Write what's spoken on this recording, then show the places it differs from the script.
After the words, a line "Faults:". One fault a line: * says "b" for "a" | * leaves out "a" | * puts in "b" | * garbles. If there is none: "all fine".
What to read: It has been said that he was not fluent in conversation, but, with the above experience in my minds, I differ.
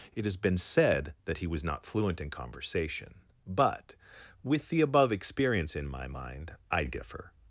It has been said that he was not fluent in conversation, but, with the above experience in my mind, I differ.
Faults:
* says "mind" for "minds"